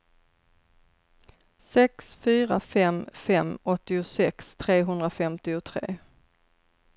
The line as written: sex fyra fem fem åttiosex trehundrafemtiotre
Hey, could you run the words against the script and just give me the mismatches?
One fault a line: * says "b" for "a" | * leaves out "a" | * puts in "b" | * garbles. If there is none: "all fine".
all fine